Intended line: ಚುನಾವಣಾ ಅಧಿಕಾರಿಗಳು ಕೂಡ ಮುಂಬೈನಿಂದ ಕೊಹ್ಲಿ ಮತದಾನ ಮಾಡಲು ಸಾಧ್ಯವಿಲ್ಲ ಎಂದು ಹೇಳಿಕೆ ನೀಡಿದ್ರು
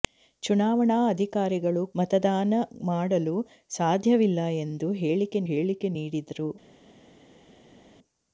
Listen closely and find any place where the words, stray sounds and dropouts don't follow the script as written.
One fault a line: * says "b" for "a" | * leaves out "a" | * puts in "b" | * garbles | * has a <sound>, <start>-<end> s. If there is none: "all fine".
* leaves out "ಕೂಡ ಮುಂಬೈನಿಂದ ಕೊಹ್ಲಿ"
* puts in "ಹೇಳಿಕೆ"